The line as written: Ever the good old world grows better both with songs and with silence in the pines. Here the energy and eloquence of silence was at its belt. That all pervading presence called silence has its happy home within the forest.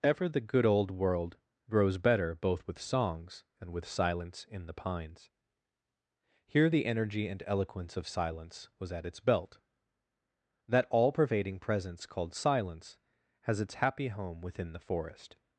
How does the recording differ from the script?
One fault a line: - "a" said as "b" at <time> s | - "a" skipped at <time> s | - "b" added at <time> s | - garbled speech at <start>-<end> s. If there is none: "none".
none